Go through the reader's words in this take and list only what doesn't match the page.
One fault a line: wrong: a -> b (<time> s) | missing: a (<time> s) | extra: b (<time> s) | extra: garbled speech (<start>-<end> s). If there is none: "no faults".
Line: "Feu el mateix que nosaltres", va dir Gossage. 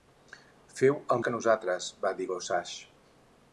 missing: mateix (1.2 s)